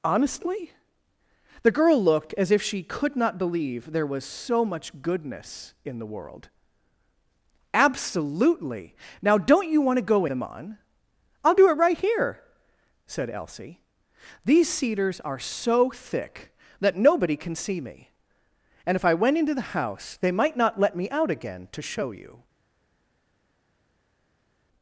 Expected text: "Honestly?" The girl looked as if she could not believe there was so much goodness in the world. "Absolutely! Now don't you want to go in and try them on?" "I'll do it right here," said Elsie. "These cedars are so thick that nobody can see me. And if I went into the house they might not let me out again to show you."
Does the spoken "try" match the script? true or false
false